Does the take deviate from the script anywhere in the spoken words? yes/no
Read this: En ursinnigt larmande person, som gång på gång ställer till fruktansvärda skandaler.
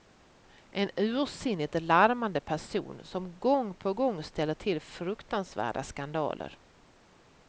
no